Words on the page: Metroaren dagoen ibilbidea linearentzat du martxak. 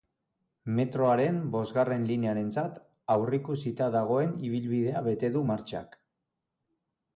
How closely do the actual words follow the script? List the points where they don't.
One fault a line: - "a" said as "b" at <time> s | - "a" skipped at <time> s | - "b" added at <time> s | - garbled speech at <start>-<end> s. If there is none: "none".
- "bosgarren linearentzat aurreikusita" added at 1.6 s
- "linearentzat" said as "bete" at 5.1 s